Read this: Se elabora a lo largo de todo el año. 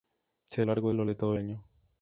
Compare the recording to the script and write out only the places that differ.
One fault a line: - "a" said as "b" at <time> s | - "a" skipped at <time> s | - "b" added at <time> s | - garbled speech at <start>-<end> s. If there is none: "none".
- "elabora" said as "largo" at 0.6 s
- "largo" skipped at 1.1 s
- "el" skipped at 1.3 s